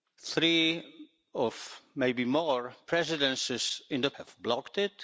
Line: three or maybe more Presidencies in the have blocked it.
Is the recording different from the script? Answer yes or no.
no